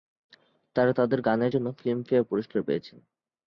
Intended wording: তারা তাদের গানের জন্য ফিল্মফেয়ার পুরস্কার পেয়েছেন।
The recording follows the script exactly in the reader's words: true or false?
true